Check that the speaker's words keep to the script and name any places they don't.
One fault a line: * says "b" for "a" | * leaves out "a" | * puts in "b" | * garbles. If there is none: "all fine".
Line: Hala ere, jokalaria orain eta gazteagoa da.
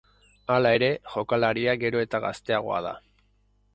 * says "gero" for "orain"